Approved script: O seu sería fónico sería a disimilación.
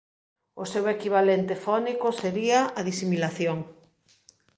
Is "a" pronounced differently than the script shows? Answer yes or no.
no